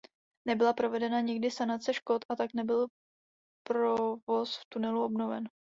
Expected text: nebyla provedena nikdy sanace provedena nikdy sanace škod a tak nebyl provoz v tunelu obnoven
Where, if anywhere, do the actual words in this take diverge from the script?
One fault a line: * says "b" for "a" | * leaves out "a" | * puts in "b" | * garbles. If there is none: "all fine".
* leaves out "provedena nikdy sanace"